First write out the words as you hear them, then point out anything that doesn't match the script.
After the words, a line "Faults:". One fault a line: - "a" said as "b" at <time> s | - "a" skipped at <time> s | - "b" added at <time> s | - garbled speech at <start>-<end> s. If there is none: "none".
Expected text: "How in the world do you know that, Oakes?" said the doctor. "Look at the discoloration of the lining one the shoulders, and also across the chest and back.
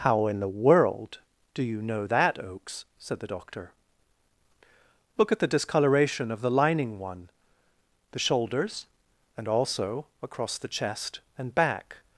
"How in the world do you know that, Oakes?" said the doctor. "Look at the discoloration of the lining one the shoulders, and also across the chest and back.
Faults:
none